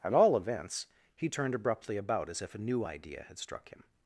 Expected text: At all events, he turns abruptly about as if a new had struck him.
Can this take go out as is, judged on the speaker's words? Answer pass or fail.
fail